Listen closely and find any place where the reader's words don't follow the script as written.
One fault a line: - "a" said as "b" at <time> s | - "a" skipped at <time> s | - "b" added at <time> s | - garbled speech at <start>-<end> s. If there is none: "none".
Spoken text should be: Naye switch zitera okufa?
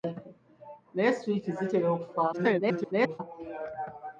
- garbled speech at 2.3-3.2 s